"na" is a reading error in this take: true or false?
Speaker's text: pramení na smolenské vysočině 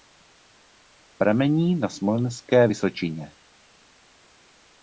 false